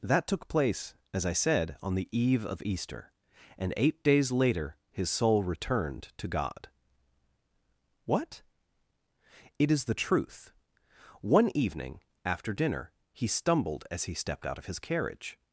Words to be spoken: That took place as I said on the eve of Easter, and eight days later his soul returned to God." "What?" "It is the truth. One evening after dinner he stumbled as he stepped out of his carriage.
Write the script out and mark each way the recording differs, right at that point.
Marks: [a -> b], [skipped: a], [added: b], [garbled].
That took place as I said on the eve of Easter, and eight days later his soul returned to God." "What?" "It is the truth. One evening after dinner he stumbled as he stepped out of his carriage.